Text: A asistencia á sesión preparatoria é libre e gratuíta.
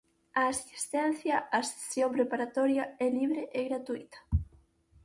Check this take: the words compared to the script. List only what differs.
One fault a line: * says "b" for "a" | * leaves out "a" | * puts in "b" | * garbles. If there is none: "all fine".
all fine